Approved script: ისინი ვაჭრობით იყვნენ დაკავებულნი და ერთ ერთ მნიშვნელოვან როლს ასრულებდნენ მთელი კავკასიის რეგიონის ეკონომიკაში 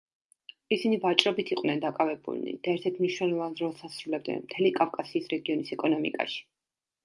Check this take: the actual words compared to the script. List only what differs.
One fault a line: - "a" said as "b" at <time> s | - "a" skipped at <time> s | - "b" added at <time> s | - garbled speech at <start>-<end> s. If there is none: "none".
none